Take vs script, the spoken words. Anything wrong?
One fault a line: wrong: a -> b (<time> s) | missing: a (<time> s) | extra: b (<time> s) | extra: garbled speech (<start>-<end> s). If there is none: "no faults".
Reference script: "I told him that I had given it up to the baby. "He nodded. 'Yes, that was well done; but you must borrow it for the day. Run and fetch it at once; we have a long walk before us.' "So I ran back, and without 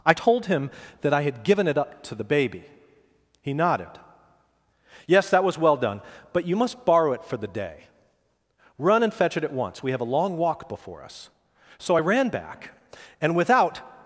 no faults